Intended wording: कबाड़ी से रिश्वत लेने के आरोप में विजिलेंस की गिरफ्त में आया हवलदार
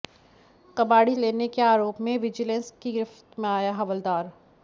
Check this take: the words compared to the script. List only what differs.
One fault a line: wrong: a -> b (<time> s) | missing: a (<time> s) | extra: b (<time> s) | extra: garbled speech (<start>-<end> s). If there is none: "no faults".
missing: से रिश्वत (1.1 s)